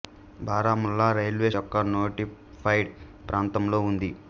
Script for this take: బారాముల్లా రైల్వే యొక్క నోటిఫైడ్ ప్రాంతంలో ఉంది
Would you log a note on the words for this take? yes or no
no